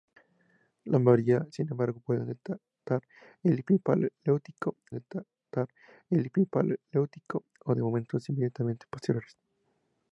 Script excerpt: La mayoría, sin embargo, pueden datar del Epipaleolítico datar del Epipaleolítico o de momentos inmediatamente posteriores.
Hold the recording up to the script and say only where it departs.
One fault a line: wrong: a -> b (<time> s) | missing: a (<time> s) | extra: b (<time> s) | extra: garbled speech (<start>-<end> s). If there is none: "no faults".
no faults